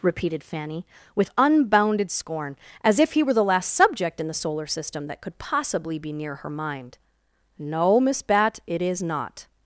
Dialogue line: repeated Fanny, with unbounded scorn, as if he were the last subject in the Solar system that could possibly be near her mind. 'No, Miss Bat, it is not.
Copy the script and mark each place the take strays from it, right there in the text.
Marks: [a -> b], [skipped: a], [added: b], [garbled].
repeated Fanny, with unbounded scorn, as if he were the last subject in the Solar system that could possibly be near her mind. 'No, Miss Bat, it is not.